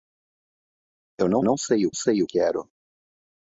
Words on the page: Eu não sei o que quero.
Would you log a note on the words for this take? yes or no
yes